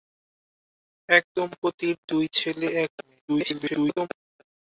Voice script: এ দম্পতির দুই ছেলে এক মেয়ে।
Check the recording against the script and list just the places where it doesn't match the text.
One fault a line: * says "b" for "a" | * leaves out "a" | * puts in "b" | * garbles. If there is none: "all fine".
* garbles